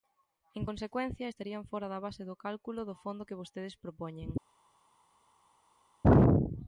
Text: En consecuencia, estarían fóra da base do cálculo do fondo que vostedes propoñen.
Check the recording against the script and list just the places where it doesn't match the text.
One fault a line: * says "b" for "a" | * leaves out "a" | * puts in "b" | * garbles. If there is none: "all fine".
all fine